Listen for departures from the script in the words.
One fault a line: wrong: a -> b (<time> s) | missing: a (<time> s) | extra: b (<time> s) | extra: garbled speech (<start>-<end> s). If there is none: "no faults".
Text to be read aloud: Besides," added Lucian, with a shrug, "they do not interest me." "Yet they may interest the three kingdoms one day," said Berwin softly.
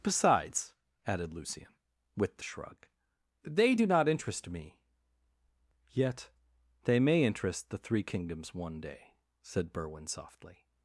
wrong: a -> the (2.4 s)